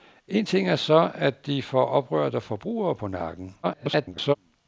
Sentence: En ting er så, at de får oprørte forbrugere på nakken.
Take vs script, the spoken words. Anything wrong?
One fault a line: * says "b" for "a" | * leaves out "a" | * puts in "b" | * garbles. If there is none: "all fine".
* garbles